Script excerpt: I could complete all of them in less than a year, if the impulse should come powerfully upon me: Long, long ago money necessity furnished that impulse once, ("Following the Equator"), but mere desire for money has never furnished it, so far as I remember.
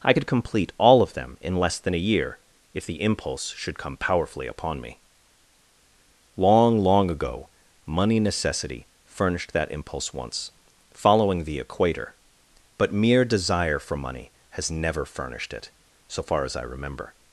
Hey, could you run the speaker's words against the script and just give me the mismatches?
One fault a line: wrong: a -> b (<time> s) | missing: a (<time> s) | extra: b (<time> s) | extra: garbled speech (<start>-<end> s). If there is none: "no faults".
no faults